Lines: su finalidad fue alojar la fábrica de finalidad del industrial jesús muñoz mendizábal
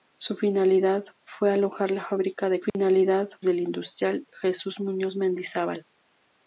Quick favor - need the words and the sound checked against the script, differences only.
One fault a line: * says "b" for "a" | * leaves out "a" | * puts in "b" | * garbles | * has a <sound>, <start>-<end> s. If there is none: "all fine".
* has a dropout, 2.7-2.7 s